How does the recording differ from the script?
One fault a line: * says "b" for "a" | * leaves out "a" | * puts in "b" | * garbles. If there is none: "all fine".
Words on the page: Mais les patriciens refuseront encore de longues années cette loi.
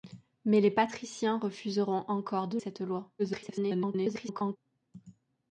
* leaves out "longues années"
* garbles